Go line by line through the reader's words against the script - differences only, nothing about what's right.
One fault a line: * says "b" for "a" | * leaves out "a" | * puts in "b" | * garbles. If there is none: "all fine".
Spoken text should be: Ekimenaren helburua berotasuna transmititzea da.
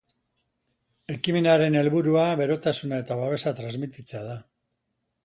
* puts in "eta babesa"